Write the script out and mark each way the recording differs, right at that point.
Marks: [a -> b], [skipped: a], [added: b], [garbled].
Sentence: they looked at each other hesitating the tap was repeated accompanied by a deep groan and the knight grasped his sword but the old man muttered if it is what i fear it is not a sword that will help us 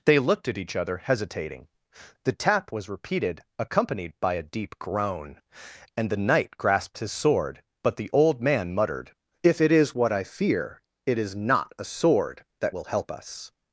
they looked at each other hesitating the tap was repeated accompanied by a deep groan and the knight grasped his sword but the old man muttered if it is what i fear it is not a sword that will help us